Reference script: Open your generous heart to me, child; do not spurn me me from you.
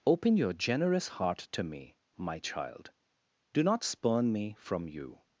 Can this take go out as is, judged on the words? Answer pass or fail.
fail